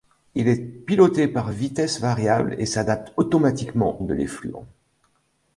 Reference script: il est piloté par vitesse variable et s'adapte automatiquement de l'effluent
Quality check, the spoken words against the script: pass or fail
pass